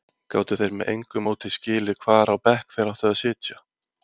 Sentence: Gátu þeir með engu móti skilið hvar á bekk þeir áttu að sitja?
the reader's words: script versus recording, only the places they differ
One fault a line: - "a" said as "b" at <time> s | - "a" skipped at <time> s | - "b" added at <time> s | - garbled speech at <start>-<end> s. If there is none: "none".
none